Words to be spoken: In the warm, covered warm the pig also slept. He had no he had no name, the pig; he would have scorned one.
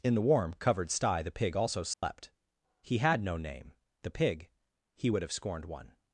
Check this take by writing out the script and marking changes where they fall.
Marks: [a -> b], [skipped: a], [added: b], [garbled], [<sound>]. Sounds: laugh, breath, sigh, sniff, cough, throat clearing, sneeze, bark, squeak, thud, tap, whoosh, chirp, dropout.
In the warm, covered [warm -> sty] the pig also slept. [dropout] He had no [skipped: he had no] name, the pig; he would have scorned one.